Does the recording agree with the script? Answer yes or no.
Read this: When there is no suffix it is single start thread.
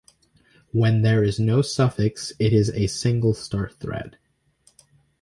no